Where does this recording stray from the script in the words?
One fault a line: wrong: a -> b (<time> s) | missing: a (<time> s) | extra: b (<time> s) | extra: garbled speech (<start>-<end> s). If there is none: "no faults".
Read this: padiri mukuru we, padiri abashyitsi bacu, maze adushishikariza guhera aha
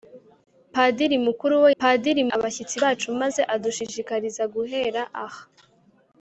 no faults